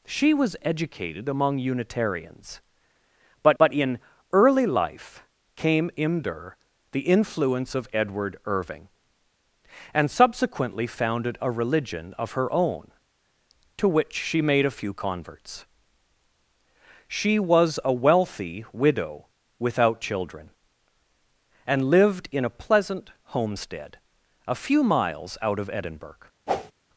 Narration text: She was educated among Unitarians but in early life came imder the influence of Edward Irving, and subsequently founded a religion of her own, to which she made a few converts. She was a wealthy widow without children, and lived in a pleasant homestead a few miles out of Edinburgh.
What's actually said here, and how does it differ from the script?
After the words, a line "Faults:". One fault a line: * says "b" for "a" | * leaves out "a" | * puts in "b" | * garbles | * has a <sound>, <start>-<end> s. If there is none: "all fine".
She was educated among Unitarians but but in early life came imder the influence of Edward Irving, and subsequently founded a religion of her own, to which she made a few converts. She was a wealthy widow without children, and lived in a pleasant homestead a few miles out of Edinburgh.
Faults:
* puts in "but"
* has a whoosh, 26.5-26.7 s